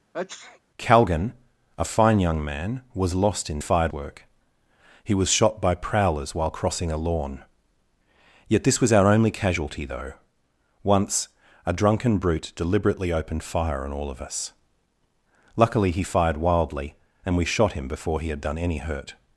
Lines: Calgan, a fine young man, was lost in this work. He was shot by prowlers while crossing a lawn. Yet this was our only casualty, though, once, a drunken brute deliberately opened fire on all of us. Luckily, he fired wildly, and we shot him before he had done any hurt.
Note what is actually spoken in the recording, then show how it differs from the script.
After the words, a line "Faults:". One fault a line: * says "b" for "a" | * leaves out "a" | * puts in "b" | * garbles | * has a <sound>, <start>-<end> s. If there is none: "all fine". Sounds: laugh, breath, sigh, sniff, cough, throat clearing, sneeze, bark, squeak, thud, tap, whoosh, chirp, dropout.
Calgan, a fine young man, was lost in fired work. He was shot by prowlers while crossing a lawn. Yet this was our only casualty, though, once, a drunken brute deliberately opened fire on all of us. Luckily, he fired wildly, and we shot him before he had done any hurt.
Faults:
* has a sneeze, 0.1-0.6 s
* says "fired" for "this"